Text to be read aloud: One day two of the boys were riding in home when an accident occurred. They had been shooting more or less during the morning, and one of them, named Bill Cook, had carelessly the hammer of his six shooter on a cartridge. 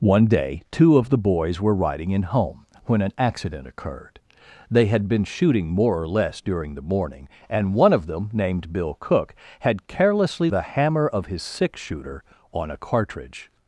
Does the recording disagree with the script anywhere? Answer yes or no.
no